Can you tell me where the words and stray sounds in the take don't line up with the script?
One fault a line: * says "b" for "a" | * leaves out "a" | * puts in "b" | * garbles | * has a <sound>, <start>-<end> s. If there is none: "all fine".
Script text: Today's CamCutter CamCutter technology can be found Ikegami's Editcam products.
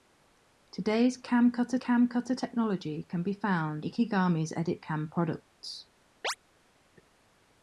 * has a chirp, 6.2-6.4 s